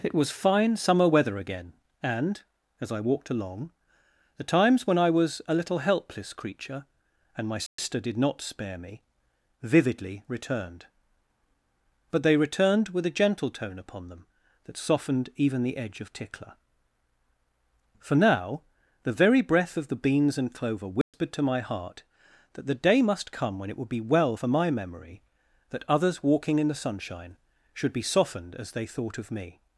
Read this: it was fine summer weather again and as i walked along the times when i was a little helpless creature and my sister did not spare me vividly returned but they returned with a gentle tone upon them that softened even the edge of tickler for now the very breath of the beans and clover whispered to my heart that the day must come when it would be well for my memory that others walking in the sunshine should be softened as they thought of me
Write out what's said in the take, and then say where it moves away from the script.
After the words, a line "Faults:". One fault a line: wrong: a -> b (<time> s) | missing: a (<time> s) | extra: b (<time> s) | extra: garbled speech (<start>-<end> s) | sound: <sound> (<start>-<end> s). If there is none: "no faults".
it was fine summer weather again and as i walked along the times when i was a little helpless creature and my sister did not spare me vividly returned but they returned with a gentle tone upon them that softened even the edge of tickler for now the very breath of the beans and clover whispered to my heart that the day must come when it would be well for my memory that others walking in the sunshine should be softened as they thought of me
Faults:
sound: dropout (7.7-7.8 s)
sound: dropout (21.0-21.1 s)